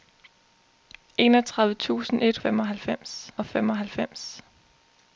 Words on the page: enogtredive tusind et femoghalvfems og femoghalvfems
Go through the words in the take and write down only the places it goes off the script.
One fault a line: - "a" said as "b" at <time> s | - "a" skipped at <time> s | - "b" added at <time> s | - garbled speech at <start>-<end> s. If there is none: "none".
none